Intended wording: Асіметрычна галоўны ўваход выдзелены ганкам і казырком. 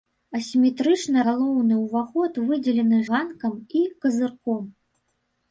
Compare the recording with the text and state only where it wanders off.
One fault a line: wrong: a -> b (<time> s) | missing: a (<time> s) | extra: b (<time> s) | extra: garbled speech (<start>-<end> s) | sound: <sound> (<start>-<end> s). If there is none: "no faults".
no faults